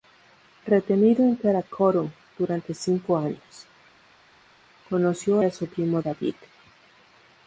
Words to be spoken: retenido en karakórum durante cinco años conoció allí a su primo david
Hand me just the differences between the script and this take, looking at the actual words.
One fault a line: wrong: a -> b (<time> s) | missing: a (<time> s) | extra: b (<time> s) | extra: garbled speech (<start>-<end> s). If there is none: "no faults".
missing: allí (5.4 s)